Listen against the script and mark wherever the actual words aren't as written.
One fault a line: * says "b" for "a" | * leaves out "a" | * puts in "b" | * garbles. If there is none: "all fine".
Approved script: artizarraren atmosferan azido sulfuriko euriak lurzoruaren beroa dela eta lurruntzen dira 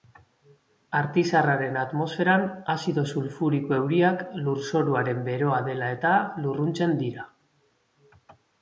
all fine